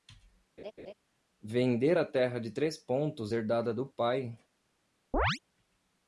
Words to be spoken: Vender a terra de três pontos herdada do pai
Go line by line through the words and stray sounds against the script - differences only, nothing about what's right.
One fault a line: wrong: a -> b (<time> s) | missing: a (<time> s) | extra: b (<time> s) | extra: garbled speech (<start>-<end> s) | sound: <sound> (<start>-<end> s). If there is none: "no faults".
sound: laugh (0.6-0.9 s)
sound: chirp (5.1-5.4 s)